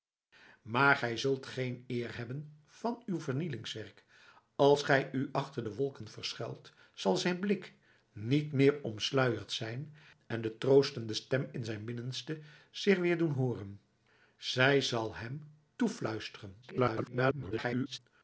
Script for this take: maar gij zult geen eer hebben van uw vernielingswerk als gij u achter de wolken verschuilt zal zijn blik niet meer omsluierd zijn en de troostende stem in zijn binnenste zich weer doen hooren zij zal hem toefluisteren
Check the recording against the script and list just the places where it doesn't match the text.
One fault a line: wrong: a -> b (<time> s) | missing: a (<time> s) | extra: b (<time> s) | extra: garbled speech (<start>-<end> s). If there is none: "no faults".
extra: garbled speech (16.6-18.0 s)